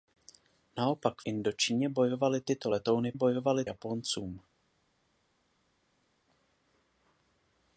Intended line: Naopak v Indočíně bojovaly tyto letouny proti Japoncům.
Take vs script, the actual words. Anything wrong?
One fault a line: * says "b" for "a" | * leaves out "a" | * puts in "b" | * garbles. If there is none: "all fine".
* leaves out "v"
* says "bojovaly" for "proti"